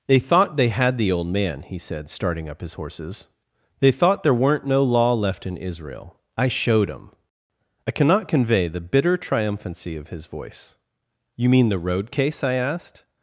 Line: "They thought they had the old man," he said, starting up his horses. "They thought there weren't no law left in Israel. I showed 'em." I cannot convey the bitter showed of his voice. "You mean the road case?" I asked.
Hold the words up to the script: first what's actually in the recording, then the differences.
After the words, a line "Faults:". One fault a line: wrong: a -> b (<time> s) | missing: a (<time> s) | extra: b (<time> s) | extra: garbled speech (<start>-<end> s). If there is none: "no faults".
"They thought they had the old man," he said, starting up his horses. "They thought there weren't no law left in Israel. I showed 'em." I cannot convey the bitter triumphancy of his voice. "You mean the road case?" I asked.
Faults:
wrong: showed -> triumphancy (9.2 s)